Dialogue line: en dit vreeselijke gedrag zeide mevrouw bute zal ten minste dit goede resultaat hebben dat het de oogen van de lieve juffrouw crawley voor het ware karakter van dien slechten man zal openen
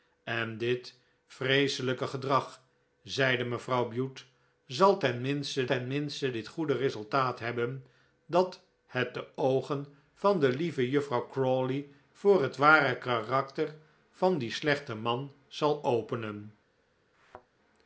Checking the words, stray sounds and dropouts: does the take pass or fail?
fail